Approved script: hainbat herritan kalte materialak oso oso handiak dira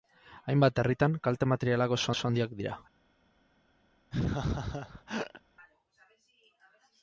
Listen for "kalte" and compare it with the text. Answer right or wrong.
right